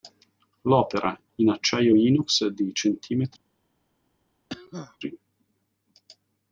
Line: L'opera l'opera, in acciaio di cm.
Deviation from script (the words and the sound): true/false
true